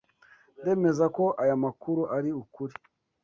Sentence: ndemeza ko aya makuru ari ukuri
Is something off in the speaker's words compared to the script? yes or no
no